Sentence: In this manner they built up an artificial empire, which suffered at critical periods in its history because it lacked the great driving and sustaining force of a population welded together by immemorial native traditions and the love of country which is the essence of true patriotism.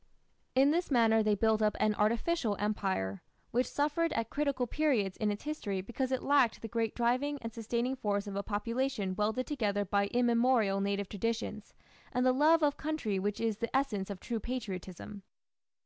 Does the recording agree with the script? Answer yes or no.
yes